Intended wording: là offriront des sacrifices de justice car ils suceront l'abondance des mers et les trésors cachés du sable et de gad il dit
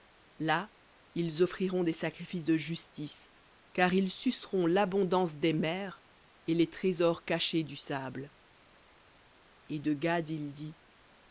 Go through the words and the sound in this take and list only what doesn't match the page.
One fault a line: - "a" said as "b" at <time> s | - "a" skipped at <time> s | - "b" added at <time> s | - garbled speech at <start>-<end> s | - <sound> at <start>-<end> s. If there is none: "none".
- "ils" added at 1.1 s